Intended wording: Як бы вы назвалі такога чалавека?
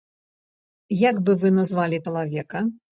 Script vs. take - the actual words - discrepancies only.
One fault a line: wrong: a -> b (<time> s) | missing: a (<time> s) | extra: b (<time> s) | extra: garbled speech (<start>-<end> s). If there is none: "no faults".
missing: такога (2.0 s)